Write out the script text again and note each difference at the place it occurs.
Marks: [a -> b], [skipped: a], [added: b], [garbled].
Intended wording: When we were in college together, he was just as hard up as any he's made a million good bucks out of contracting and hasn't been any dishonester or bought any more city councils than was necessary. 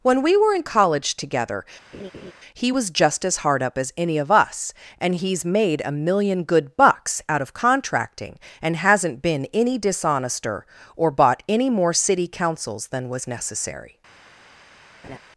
When we were in college together, he was just as hard up as any [added: of us and] he's made a million good bucks out of contracting and hasn't been any dishonester or bought any more city councils than was necessary.